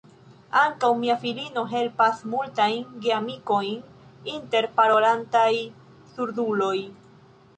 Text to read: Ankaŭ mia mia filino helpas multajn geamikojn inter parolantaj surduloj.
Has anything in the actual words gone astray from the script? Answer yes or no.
yes